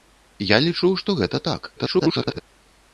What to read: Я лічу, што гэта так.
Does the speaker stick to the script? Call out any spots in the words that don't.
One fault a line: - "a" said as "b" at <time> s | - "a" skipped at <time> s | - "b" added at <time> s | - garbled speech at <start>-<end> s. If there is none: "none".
- garbled speech at 1.8-2.4 s